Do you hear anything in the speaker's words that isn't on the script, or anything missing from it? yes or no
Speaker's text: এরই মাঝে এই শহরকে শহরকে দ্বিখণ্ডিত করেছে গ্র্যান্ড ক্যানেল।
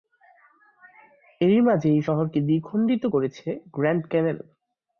yes